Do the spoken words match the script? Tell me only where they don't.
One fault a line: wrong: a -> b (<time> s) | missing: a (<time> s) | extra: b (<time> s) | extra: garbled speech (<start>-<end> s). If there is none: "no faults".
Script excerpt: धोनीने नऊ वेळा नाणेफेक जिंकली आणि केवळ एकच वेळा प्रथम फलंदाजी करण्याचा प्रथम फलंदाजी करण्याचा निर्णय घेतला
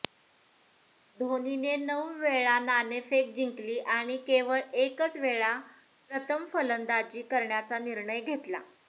missing: प्रथम फलंदाजी करण्याचा (7.8 s)